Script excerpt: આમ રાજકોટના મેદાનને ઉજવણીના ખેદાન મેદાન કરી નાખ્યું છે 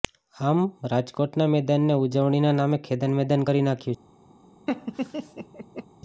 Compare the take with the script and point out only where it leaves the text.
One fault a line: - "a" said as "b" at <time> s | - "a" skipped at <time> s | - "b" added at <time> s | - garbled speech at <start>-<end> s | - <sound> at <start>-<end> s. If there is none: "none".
- "નામે" added at 2.6 s
- laugh at 4.7-5.9 s